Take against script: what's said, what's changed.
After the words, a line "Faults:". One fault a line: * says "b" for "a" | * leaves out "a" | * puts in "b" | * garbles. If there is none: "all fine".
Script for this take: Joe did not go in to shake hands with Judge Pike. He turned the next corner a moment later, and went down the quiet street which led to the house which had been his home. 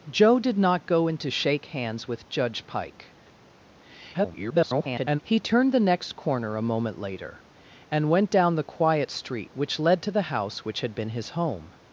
Joe did not go in to shake hands with Judge Pike. [garbled] He turned the next corner a moment later, and went down the quiet street which led to the house which had been his home.
Faults:
* garbles